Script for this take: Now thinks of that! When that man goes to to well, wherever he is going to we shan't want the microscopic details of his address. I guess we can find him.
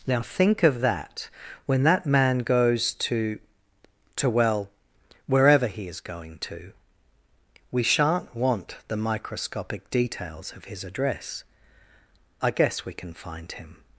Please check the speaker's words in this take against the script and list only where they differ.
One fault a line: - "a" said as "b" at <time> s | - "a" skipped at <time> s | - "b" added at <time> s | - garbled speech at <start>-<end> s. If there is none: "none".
- "thinks" said as "think" at 0.2 s